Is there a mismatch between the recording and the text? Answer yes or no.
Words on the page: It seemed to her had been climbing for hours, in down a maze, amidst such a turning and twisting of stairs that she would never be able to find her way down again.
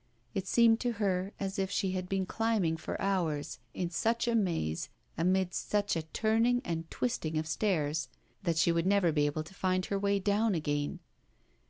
yes